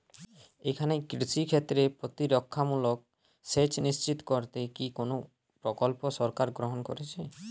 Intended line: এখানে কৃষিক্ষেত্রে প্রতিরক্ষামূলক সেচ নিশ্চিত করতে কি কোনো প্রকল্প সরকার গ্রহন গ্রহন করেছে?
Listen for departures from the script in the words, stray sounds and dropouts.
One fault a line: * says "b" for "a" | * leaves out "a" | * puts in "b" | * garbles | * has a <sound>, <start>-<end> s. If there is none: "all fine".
* leaves out "গ্রহন"